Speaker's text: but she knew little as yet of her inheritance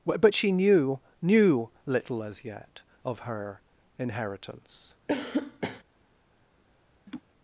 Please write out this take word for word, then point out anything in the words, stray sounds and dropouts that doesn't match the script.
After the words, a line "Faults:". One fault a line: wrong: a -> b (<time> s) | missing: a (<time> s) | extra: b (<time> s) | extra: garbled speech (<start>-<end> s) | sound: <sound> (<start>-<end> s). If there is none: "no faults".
but she knew knew little as yet of her inheritance
Faults:
extra: knew (1.2 s)
sound: cough (5.1-5.8 s)
sound: laugh (7.1-7.2 s)